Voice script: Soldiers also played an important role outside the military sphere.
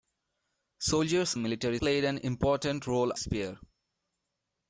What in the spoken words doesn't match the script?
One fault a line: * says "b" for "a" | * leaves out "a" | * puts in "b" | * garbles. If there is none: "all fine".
* says "military" for "also"
* leaves out "outside the military"